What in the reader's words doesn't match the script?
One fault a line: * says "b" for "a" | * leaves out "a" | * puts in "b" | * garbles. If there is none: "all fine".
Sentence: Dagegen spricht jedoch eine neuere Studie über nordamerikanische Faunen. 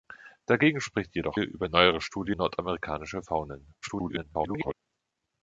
* says "über" for "eine"
* leaves out "über"
* garbles